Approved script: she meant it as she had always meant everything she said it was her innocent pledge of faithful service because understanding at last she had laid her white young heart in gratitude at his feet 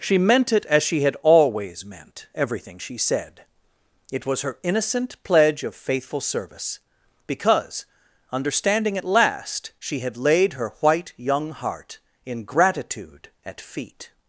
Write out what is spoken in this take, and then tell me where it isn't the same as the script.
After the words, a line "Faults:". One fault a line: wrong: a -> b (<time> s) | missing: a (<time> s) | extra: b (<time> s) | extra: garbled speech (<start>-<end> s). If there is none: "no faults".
she meant it as she had always meant everything she said it was her innocent pledge of faithful service because understanding at last she had laid her white young heart in gratitude at feet
Faults:
missing: his (13.6 s)